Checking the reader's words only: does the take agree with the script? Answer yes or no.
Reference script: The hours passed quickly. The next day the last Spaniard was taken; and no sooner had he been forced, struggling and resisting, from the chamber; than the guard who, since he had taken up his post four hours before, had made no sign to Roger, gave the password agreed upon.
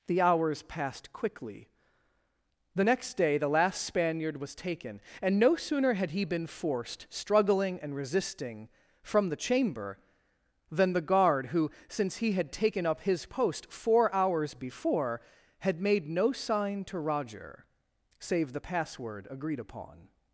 no